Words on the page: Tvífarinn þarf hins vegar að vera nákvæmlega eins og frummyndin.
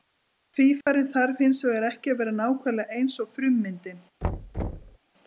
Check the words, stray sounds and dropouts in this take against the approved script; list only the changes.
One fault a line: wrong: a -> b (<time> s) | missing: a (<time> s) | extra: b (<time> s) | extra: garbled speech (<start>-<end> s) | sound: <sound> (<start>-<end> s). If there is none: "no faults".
sound: dropout (0.8-0.9 s)
extra: ekki (1.9 s)
sound: thud (4.2-5.0 s)